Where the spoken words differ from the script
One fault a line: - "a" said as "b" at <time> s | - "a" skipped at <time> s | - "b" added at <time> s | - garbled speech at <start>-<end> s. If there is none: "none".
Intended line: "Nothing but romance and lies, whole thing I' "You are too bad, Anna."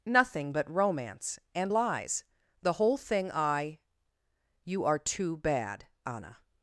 - "the" added at 2.6 s